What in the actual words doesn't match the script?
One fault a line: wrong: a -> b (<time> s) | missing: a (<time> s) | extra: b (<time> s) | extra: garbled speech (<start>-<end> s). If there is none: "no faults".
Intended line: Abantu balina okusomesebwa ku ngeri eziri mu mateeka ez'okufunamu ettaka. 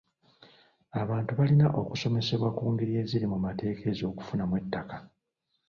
no faults